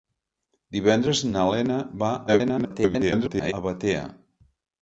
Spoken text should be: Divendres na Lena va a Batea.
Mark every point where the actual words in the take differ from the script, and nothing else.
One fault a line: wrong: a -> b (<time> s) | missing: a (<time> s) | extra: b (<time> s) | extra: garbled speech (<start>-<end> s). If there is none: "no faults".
extra: garbled speech (2.3-3.5 s)